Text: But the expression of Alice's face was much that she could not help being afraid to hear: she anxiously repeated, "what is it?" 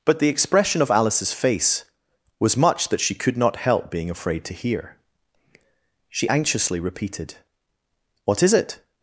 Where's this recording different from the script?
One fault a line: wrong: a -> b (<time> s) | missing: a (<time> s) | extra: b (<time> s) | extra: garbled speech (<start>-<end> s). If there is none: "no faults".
no faults